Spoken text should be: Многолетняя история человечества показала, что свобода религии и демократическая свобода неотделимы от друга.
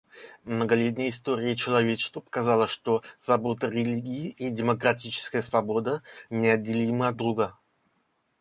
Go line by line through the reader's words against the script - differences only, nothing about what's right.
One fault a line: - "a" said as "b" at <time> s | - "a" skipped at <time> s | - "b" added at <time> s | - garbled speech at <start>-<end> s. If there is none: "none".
none